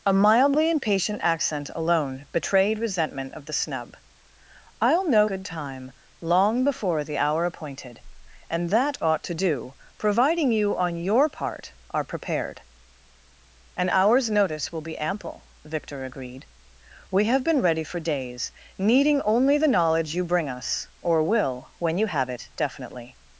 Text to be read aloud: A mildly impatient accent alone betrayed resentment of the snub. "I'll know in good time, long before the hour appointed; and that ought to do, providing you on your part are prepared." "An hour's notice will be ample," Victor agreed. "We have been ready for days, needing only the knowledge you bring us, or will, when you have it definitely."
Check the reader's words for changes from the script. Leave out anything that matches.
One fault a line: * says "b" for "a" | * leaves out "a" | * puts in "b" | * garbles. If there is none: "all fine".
* leaves out "in"